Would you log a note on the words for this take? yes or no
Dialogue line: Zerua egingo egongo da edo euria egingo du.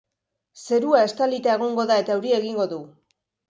yes